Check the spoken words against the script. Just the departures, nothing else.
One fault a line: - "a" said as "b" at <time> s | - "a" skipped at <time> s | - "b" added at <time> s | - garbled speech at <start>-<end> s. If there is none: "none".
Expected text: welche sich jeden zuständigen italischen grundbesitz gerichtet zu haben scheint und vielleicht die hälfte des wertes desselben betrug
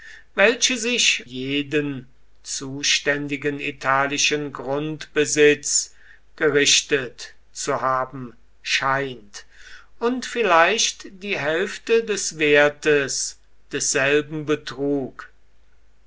none